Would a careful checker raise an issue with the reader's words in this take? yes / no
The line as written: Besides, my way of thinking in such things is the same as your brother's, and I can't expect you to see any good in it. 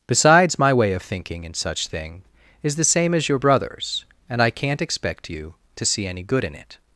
yes